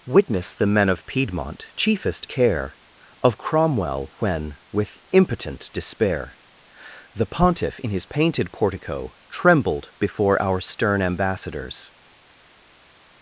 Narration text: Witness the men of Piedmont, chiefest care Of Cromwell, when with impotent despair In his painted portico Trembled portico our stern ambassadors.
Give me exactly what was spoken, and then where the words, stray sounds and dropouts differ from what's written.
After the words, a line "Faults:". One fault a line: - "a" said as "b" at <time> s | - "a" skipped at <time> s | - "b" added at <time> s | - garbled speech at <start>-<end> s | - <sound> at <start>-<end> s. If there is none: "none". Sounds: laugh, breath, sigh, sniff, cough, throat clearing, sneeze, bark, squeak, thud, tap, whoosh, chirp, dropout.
Witness the men of Piedmont, chiefest care Of Cromwell, when with impotent despair The Pontiff in his painted portico Trembled before our stern ambassadors.
Faults:
- "The Pontiff" added at 7.1 s
- "portico" said as "before" at 10.0 s